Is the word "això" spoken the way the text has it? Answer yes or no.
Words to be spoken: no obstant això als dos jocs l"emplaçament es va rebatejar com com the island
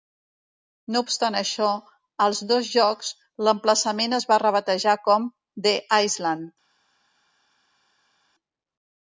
yes